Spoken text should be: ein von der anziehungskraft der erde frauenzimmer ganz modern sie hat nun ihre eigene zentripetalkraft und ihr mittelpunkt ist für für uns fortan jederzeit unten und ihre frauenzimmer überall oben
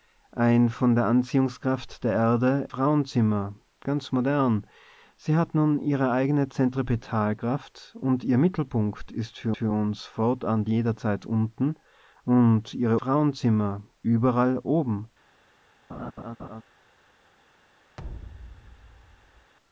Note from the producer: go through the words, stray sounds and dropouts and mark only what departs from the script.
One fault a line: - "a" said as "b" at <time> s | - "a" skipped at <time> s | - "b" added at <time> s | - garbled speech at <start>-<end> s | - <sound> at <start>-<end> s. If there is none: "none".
- laugh at 15.9-16.6 s
- thud at 18.0-19.5 s